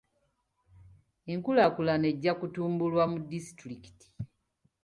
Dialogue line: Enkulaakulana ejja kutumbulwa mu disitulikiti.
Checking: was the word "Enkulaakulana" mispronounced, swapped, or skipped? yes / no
no